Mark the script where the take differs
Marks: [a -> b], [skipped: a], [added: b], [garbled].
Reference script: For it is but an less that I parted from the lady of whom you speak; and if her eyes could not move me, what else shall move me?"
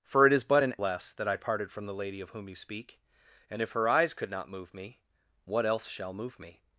For it is but an less that I parted from the lady of whom you speak; and if her eyes could not move me, what else shall move me?"